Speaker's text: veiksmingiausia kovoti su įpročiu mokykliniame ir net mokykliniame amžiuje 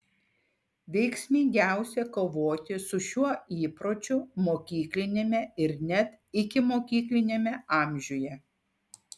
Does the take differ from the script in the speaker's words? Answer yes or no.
yes